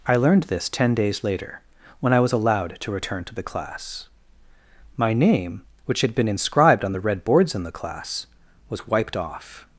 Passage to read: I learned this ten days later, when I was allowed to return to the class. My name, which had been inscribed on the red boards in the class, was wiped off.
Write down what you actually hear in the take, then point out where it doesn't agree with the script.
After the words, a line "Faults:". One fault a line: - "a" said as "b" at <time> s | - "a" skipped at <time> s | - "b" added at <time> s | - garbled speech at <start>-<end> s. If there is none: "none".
I learned this ten days later, when I was allowed to return to the class. My name, which had been inscribed on the red boards in the class, was wiped off.
Faults:
none